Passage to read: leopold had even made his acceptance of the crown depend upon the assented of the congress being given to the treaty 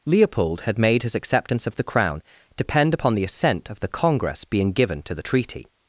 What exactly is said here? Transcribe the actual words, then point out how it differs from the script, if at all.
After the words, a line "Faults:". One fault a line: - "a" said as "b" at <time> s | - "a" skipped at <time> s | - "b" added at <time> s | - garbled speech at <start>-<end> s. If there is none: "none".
leopold had made his acceptance of the crown depend upon the assent of the congress being given to the treaty
Faults:
- "even" skipped at 0.8 s
- "assented" said as "assent" at 3.2 s